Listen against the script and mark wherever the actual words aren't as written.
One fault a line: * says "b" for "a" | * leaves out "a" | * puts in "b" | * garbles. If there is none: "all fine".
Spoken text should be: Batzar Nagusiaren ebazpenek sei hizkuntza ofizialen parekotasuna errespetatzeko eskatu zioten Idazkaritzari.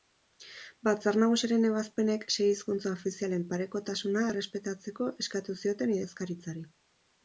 all fine